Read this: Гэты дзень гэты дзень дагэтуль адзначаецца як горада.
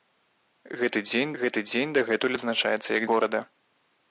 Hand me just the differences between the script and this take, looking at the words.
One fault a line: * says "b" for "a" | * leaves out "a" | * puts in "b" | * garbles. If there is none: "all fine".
all fine